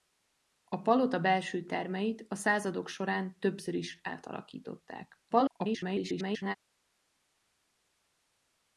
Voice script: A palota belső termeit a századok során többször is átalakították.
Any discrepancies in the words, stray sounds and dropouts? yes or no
yes